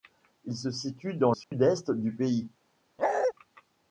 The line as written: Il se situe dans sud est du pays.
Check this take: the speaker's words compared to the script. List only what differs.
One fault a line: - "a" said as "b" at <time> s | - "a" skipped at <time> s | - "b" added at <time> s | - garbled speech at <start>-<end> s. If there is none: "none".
none